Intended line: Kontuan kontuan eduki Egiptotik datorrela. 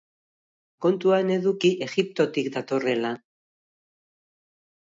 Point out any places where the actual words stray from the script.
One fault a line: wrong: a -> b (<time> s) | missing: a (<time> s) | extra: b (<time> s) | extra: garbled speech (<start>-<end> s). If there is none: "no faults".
missing: kontuan (1.3 s)